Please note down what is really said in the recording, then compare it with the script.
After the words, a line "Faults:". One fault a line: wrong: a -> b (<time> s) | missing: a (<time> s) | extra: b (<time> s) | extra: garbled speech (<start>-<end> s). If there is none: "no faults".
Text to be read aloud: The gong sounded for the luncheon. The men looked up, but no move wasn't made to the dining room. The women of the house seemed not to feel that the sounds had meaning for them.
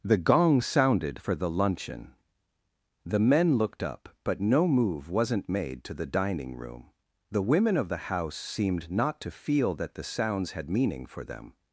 The gong sounded for the luncheon. The men looked up, but no move wasn't made to the dining room. The women of the house seemed not to feel that the sounds had meaning for them.
Faults:
no faults